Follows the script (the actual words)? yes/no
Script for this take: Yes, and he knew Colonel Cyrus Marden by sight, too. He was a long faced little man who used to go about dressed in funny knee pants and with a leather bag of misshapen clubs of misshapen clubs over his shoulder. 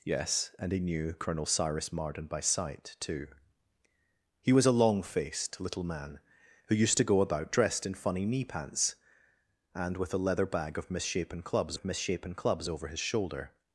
yes